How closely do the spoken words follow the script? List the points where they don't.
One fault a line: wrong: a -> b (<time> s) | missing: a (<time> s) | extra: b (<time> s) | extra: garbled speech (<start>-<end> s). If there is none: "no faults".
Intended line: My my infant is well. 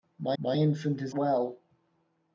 no faults